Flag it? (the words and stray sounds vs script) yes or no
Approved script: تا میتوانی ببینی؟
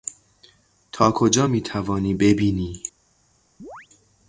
yes